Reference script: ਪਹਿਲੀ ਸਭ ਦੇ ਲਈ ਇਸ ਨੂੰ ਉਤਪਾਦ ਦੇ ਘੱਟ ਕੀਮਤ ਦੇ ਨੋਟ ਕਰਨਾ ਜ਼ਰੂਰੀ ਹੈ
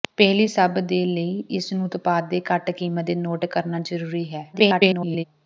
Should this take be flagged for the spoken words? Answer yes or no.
yes